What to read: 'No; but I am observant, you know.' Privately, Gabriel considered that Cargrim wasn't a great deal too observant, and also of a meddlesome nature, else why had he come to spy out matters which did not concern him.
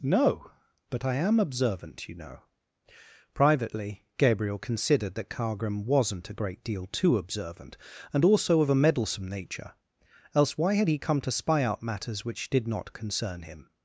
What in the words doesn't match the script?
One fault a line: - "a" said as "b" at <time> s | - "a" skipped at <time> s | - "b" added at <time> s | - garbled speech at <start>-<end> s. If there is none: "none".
none